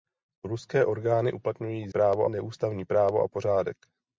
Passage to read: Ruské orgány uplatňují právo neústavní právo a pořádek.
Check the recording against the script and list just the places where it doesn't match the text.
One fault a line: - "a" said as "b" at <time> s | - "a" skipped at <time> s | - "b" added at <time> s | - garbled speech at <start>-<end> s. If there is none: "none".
none